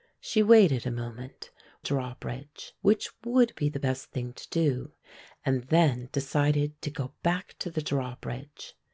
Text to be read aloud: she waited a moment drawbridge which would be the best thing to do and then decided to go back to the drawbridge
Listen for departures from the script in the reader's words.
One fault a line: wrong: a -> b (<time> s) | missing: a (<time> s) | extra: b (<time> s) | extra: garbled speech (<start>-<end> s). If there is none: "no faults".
no faults